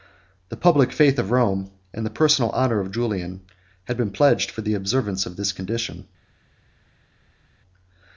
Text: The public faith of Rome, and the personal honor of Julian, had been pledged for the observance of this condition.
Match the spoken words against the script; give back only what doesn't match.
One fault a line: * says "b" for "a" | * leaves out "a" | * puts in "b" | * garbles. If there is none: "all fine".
all fine